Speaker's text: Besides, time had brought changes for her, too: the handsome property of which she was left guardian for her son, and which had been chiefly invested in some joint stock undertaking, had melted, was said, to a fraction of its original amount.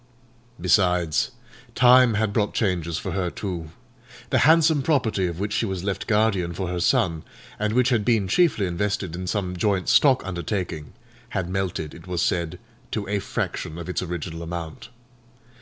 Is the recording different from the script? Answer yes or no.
yes